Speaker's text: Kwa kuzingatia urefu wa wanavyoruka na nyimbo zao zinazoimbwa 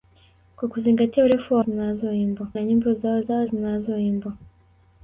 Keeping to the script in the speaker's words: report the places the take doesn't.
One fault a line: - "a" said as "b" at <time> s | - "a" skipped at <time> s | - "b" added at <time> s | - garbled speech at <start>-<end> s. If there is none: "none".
- "wanavyoruka" said as "zinazoimbwa" at 1.6 s
- "zao" added at 3.2 s